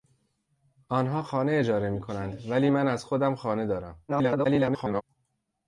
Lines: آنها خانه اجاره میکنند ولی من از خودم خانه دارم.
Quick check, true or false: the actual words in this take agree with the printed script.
false